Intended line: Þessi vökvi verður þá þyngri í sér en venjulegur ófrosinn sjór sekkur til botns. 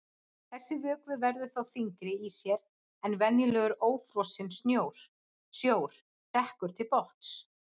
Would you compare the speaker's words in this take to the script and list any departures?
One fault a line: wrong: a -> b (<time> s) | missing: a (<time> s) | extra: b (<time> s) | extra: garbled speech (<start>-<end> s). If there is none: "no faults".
no faults